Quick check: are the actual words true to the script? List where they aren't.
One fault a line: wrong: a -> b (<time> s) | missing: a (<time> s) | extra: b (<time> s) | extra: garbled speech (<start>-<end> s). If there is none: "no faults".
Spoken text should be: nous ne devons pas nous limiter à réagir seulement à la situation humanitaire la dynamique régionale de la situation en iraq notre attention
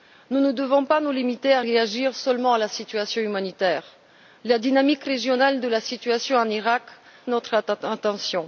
no faults